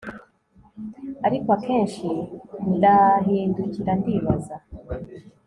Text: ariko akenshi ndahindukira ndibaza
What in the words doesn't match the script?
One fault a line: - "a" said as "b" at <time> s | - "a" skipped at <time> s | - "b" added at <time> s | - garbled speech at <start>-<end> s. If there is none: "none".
none